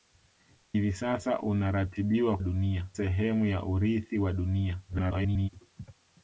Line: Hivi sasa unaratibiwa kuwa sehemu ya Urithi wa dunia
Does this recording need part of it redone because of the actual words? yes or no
yes